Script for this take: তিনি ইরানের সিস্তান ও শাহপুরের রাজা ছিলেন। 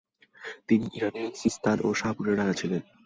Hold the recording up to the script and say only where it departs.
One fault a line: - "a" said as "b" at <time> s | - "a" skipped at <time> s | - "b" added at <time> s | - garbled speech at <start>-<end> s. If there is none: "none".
none